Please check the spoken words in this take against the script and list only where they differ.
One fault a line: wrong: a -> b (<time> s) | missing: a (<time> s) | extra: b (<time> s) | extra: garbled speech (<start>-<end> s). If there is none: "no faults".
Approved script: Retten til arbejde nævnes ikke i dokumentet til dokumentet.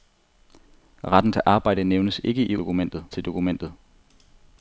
no faults